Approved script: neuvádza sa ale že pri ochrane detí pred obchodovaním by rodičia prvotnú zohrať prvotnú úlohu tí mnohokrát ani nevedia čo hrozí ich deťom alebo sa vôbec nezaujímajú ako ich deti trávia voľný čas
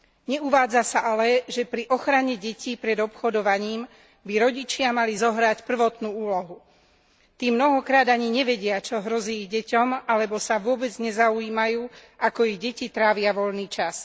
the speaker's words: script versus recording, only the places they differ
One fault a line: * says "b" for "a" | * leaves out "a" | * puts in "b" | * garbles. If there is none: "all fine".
* says "mali" for "prvotnú"